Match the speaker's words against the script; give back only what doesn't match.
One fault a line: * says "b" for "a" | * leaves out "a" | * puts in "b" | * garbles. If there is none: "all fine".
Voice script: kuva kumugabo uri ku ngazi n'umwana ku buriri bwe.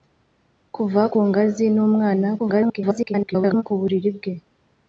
* leaves out "kumugabo uri"
* garbles